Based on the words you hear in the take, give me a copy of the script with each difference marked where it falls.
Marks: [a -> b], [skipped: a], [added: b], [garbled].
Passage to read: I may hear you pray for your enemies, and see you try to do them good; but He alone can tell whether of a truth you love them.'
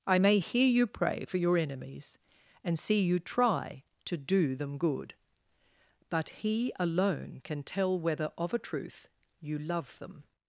I may hear you pray for your enemies, and see you try to do them good; but He alone can tell whether of a truth you love them.'